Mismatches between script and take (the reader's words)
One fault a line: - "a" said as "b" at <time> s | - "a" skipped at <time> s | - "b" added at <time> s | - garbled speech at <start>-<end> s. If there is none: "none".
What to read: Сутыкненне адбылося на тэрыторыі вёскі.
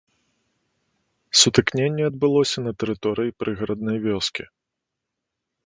- "прыгараднай" added at 3.4 s